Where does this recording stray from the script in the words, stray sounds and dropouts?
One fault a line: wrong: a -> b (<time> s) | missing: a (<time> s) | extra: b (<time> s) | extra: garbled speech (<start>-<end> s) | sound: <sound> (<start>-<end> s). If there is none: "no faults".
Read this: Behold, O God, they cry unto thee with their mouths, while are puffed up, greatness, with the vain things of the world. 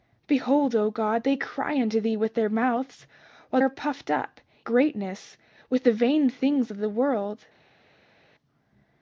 no faults